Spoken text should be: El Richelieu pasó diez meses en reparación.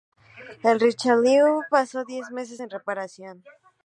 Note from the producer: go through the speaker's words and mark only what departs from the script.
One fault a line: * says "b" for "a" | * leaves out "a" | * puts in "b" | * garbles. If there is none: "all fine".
all fine